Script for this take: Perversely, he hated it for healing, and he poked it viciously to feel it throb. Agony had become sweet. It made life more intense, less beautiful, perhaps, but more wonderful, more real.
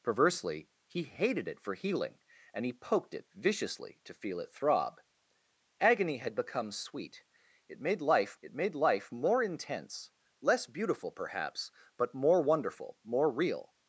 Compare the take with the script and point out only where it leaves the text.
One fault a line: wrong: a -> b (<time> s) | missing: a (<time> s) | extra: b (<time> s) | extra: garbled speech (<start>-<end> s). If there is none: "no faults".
extra: it made life (8.4 s)